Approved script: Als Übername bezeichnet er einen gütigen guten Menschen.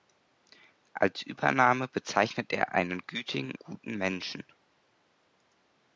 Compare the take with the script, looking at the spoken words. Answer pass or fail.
pass